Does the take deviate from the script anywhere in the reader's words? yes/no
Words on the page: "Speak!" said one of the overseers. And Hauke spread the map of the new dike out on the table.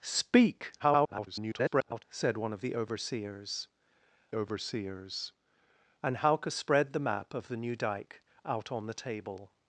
yes